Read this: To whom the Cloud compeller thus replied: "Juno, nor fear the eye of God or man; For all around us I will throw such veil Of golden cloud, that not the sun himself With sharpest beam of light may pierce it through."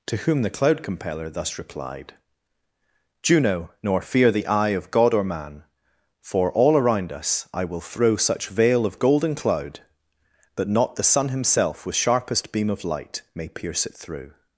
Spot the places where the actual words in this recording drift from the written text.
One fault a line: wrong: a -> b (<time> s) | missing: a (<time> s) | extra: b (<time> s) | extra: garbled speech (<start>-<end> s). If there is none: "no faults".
no faults